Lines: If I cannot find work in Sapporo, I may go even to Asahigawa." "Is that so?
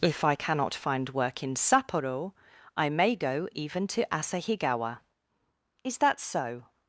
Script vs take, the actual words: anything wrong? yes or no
no